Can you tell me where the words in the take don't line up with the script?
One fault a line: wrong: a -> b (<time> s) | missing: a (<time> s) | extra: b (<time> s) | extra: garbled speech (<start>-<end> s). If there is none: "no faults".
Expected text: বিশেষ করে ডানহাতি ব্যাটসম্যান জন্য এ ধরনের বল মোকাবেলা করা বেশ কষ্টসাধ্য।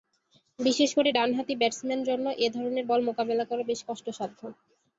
no faults